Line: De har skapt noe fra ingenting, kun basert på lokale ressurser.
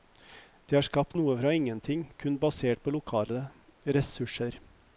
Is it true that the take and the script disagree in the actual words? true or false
false